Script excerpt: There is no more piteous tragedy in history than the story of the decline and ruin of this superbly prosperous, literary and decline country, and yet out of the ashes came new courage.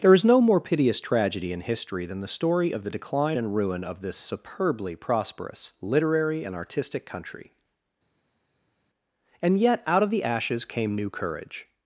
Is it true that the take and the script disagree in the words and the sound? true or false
true